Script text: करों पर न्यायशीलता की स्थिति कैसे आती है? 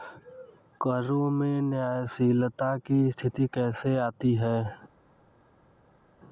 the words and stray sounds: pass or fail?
fail